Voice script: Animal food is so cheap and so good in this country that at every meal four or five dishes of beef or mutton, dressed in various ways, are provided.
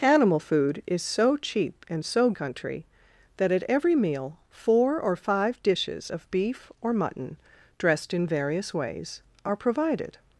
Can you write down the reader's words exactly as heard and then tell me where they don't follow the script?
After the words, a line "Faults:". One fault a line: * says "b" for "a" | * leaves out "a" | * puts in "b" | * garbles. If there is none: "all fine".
Animal food is so cheap and so country that at every meal four or five dishes of beef or mutton, dressed in various ways, are provided.
Faults:
* leaves out "good in this"